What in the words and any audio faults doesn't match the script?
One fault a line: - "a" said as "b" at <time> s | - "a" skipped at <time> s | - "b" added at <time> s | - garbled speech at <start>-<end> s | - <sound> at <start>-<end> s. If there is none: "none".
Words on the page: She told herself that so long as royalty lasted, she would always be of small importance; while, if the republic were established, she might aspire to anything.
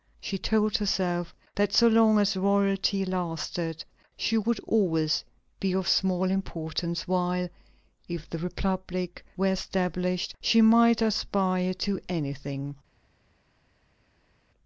none